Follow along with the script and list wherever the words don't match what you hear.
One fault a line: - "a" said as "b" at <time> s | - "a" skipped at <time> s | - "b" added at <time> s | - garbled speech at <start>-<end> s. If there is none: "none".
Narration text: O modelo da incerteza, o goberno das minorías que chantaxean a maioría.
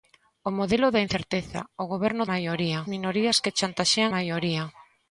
- "das" said as "maioría" at 2.3 s
- "a" skipped at 4.1 s